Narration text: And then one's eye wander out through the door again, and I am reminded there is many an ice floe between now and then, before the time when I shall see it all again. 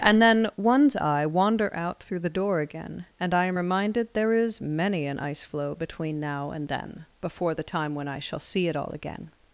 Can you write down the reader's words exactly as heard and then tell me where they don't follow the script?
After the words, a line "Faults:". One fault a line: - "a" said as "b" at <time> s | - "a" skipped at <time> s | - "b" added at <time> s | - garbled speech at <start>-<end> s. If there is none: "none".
And then one's eye wander out through the door again, and I am reminded there is many an ice floe between now and then, before the time when I shall see it all again.
Faults:
none